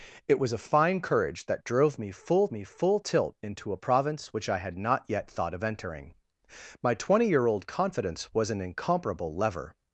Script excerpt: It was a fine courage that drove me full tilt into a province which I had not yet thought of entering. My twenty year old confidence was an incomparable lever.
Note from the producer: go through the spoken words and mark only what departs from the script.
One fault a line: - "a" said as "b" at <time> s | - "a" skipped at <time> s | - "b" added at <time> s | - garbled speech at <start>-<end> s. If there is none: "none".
- "me full" added at 2.5 s